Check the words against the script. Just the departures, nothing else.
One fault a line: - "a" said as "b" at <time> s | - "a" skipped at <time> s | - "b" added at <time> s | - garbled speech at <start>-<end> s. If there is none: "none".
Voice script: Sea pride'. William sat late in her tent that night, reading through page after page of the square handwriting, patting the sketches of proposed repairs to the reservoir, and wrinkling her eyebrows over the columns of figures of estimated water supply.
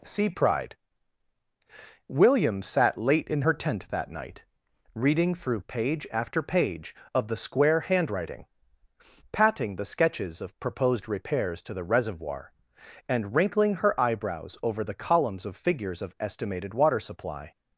none